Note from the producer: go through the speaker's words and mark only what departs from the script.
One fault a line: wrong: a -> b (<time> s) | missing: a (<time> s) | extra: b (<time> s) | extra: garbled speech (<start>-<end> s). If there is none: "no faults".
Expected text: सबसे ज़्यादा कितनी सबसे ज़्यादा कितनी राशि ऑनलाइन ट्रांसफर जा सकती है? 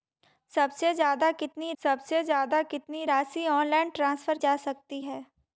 no faults